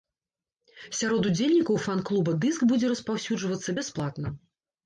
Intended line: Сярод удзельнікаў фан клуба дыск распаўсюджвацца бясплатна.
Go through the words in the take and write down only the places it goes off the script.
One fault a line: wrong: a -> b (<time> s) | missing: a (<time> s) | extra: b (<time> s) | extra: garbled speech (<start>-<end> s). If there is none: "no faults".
extra: будзе (2.7 s)